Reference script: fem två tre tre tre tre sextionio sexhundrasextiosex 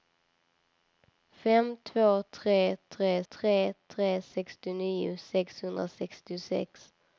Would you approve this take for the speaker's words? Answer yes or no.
yes